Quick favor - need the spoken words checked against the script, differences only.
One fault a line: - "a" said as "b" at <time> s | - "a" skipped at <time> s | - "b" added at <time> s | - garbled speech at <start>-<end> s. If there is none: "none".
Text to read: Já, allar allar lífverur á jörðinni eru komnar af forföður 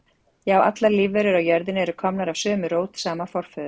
- "allar" skipped at 0.9 s
- "sömu rót sama" added at 2.5 s